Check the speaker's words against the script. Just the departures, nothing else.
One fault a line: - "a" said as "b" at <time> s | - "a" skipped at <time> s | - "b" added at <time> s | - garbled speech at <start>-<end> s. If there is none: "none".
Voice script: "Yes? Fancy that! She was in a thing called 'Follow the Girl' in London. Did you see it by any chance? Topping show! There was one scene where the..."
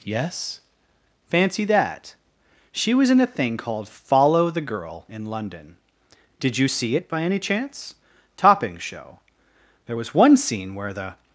none